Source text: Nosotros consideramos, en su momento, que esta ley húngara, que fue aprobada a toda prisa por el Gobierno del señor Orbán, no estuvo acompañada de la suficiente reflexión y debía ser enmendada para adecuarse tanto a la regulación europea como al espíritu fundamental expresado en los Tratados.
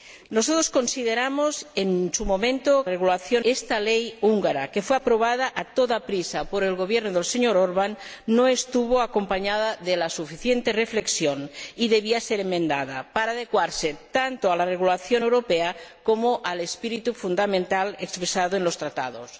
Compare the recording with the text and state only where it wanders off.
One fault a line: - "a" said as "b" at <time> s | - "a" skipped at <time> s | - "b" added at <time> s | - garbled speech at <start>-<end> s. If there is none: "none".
- "que" said as "regulación" at 2.9 s